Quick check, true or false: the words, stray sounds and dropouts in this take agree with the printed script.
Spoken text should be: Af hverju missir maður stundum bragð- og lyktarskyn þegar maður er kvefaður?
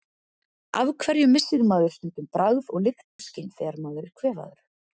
false